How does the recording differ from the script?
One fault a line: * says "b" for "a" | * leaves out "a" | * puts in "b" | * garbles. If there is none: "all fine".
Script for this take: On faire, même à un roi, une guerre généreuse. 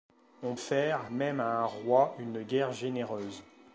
all fine